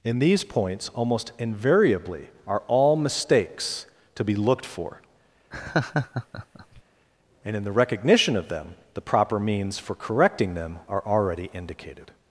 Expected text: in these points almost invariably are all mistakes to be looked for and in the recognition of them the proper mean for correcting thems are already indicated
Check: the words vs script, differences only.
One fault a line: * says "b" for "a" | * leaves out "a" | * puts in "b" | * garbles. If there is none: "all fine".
* says "means" for "mean"
* says "them" for "thems"